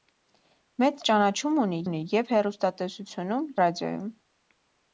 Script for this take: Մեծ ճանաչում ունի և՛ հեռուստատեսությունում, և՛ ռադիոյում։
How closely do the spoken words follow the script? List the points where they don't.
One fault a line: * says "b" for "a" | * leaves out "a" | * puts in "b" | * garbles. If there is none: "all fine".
* puts in "ունի"
* leaves out "և"